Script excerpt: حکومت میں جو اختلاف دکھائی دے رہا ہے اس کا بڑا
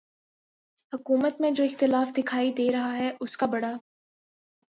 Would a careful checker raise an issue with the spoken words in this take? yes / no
no